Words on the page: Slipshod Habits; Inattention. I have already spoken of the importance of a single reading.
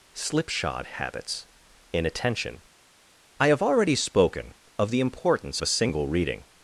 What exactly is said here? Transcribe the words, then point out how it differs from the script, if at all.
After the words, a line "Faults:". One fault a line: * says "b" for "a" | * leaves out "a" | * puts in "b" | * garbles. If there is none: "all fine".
Slipshod Habits; Inattention. I have already spoken of the importance a single reading.
Faults:
* leaves out "of"